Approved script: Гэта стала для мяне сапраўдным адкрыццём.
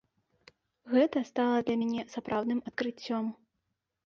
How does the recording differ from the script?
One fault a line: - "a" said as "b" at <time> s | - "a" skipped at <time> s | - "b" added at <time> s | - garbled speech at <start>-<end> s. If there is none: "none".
none